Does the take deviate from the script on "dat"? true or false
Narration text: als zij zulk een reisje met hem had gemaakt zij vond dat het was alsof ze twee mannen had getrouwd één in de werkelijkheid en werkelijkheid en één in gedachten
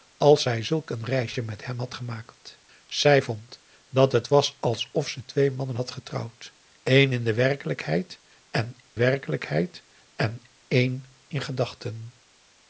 false